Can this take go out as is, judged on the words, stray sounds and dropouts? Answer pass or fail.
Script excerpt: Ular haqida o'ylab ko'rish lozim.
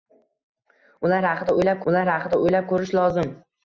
fail